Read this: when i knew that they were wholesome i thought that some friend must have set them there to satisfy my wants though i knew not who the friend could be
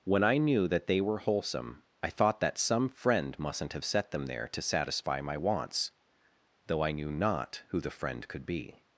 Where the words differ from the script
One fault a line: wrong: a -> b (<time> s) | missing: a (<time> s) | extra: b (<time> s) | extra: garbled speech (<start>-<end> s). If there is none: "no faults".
wrong: must -> mustn't (3.4 s)